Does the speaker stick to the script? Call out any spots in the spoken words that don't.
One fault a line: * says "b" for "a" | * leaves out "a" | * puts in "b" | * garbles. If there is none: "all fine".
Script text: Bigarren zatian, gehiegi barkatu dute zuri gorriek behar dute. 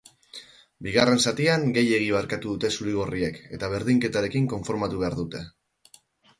* puts in "eta berdinketarekin konformatu"